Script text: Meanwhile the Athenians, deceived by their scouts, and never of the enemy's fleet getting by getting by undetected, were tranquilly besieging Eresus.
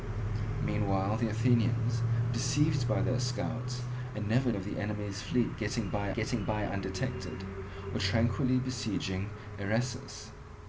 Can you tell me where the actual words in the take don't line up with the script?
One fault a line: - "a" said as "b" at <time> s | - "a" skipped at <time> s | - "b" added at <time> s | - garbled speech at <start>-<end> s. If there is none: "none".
none